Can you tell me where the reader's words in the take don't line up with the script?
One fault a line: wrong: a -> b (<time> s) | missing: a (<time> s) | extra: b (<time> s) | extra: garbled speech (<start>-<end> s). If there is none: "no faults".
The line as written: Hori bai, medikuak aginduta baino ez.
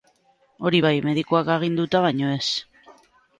no faults